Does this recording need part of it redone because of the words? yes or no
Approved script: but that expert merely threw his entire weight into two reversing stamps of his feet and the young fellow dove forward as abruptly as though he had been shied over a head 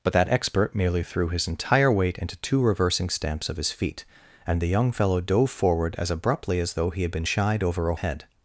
no